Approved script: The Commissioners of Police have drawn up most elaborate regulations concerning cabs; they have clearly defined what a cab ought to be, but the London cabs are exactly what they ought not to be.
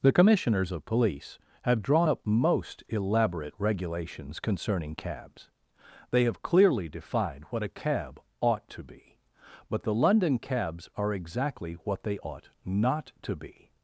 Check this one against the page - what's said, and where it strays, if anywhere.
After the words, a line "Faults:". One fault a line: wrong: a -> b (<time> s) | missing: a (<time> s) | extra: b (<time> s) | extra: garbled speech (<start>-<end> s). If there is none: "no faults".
The Commissioners of Police have drawn up most elaborate regulations concerning cabs; they have clearly defined what a cab ought to be, but the London cabs are exactly what they ought not to be.
Faults:
no faults